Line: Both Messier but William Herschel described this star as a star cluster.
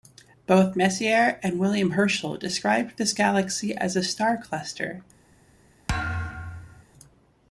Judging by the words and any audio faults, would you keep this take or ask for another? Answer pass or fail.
fail